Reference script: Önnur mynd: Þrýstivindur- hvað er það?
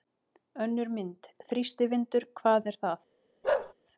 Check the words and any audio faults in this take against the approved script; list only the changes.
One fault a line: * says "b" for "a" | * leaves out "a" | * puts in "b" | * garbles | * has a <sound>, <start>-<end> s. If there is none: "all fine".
* has a bark, 3.4-3.7 s